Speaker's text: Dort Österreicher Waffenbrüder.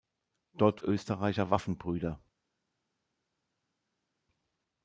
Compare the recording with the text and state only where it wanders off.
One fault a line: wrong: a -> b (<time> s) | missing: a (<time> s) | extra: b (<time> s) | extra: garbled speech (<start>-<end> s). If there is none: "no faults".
no faults